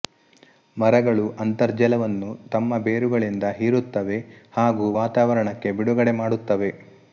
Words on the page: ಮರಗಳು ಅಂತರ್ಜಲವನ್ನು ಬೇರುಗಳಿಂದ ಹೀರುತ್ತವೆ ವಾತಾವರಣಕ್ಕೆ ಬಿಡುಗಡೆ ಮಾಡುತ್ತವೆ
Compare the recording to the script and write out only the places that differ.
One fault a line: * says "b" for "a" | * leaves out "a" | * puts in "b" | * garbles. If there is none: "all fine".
* puts in "ತಮ್ಮ"
* puts in "ಹಾಗೂ"